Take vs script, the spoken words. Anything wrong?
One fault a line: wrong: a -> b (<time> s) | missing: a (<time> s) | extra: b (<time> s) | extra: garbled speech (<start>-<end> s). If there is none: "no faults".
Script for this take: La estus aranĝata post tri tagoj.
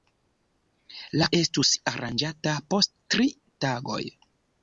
no faults